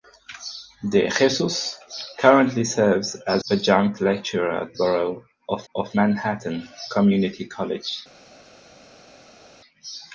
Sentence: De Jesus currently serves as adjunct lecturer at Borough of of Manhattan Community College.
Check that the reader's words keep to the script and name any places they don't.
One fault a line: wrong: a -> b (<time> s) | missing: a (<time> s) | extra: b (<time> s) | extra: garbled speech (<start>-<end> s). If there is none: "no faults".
no faults